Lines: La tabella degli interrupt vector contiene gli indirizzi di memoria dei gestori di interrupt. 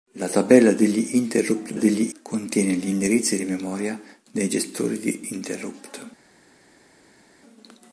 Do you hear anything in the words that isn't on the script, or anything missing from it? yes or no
yes